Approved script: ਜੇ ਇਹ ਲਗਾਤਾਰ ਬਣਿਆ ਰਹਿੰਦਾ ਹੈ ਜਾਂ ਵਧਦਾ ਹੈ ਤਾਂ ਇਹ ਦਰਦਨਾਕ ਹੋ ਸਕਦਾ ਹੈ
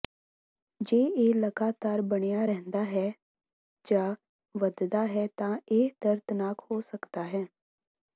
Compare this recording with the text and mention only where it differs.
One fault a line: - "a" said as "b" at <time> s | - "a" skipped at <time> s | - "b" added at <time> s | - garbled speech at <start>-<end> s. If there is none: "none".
none